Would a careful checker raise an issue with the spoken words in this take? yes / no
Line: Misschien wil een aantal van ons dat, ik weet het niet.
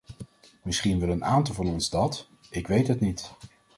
no